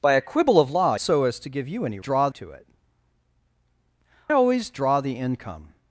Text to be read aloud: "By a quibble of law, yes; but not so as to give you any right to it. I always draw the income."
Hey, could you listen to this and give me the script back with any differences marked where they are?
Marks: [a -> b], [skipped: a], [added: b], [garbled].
"By a quibble of law, [skipped: yes; but not] so as to give you any [right -> draw] to it. [skipped: I] always draw the income."